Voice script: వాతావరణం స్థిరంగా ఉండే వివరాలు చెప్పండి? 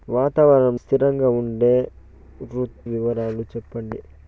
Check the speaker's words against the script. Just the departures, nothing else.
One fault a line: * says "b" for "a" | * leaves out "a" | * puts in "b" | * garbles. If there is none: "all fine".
all fine